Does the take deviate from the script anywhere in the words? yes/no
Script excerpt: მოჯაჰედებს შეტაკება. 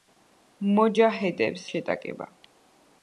no